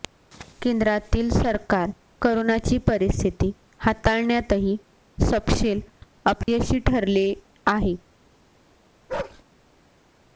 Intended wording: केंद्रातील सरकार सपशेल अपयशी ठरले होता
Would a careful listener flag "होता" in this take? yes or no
yes